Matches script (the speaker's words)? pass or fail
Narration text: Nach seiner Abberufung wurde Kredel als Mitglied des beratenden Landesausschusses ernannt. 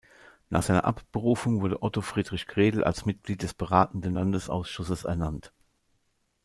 fail